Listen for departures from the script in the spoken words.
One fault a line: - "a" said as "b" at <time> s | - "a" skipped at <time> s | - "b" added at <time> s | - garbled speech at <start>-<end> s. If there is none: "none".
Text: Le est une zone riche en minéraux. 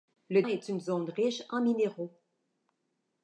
none